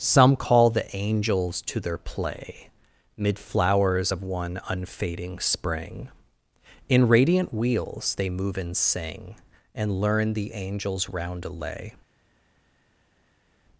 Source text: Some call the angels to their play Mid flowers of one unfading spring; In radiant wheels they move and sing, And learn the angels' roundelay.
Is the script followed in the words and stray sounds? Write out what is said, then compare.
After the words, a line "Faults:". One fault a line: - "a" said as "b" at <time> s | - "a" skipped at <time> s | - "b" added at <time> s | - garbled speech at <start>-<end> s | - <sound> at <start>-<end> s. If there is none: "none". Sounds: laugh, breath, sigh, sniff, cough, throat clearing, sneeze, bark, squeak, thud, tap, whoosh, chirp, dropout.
Some call the angels to their play Mid flowers of one unfading spring; In radiant wheels they move and sing, And learn the angels' roundelay.
Faults:
none